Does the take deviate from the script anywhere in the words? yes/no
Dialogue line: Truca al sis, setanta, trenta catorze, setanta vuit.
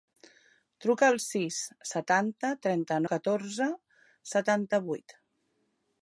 no